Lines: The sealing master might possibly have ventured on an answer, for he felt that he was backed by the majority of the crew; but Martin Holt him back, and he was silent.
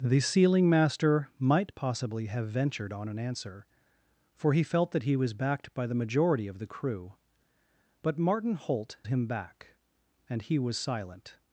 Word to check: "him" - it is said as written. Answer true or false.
true